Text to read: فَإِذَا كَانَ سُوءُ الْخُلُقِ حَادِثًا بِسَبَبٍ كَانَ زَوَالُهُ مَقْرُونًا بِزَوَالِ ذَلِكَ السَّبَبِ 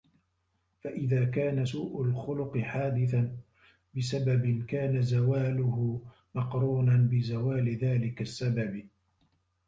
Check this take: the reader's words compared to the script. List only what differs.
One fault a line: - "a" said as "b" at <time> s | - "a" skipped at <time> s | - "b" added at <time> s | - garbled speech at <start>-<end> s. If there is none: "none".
none